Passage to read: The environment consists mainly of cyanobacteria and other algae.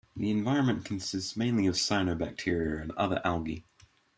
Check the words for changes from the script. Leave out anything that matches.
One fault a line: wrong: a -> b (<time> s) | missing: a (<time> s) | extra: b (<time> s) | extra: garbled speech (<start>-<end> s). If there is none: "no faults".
no faults